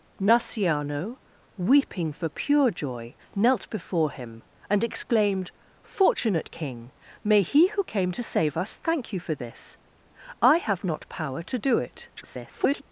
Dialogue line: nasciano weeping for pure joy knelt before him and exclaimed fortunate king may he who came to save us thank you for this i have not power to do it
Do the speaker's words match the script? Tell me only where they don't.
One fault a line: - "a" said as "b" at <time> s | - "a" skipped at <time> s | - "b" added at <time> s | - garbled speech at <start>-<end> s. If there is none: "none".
- garbled speech at 12.2-12.8 s